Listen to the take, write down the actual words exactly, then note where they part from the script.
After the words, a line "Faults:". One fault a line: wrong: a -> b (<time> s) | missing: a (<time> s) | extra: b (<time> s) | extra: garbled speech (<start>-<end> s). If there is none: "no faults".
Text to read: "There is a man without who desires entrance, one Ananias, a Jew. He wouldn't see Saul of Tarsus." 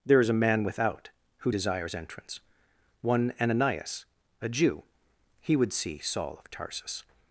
"There is a man without who desires entrance, one Ananias, a Jew. He would see Saul of Tarsus."
Faults:
wrong: wouldn't -> would (5.6 s)